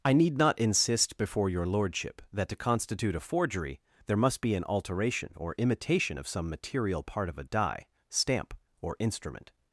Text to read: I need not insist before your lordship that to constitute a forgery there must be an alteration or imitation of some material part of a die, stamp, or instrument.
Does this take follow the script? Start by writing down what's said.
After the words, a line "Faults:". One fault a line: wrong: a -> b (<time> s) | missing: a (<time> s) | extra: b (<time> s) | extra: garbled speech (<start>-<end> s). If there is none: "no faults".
I need not insist before your lordship that to constitute a forgery there must be an alteration or imitation of some material part of a die, stamp, or instrument.
Faults:
no faults